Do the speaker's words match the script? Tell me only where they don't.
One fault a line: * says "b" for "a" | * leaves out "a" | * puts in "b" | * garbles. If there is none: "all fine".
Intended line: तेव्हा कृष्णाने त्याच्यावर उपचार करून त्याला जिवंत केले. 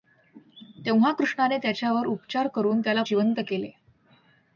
all fine